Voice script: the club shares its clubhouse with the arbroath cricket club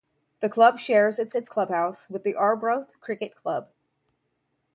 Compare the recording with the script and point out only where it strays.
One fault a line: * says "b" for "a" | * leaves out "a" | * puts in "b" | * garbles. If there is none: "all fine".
* puts in "its"